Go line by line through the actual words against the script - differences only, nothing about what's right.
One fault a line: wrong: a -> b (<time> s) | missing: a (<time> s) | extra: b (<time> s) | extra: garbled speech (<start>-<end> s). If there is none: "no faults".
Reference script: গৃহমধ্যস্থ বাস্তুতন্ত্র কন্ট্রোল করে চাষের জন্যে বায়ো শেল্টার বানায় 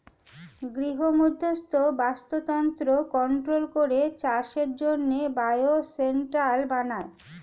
no faults